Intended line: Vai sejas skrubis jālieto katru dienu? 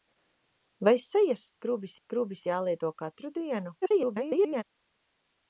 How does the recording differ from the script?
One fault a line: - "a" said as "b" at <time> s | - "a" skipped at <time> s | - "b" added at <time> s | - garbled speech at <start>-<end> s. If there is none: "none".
- "skrubis" added at 2.0 s
- garbled speech at 3.8-4.6 s